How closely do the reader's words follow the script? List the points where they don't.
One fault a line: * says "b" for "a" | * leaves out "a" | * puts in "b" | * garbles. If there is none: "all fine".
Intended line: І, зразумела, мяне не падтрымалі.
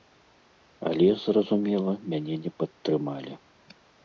* says "Але" for "І"